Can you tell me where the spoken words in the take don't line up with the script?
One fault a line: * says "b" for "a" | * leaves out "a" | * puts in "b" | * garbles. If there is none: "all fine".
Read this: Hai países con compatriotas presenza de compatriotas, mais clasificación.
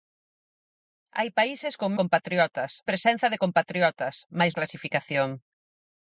all fine